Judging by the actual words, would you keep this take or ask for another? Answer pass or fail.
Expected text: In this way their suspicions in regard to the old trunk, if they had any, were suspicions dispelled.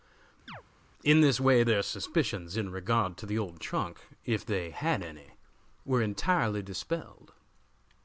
fail